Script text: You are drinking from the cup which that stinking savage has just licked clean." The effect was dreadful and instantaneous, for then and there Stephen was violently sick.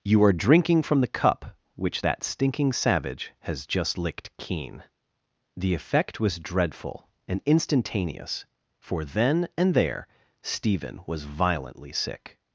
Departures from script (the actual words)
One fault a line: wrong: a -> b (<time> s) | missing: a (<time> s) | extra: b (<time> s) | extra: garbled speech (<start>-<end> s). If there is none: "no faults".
wrong: clean -> keen (4.4 s)